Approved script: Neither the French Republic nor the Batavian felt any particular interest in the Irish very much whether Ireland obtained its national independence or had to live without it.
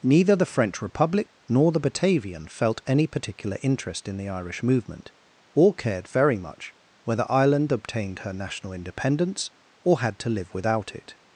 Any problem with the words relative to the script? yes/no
yes